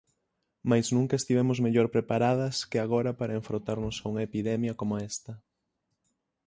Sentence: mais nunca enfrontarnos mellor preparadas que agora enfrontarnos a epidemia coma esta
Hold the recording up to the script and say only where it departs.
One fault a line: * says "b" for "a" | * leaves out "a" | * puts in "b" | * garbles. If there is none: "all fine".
* says "estivemos" for "enfrontarnos"
* puts in "para"
* puts in "unha"